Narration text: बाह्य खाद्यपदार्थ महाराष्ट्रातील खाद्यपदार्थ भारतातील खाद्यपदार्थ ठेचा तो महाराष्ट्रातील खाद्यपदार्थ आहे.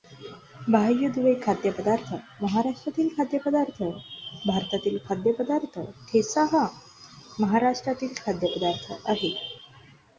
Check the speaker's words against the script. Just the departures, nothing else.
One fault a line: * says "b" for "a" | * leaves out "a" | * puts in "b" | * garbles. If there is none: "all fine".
* puts in "दुवे"
* says "हा" for "तो"